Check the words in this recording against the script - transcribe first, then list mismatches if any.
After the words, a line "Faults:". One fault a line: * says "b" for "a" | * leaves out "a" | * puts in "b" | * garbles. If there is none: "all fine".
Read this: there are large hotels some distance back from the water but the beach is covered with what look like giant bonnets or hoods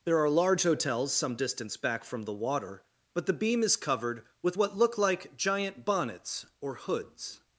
there are large hotels some distance back from the water but the beam is covered with what look like giant bonnets or hoods
Faults:
* says "beam" for "beach"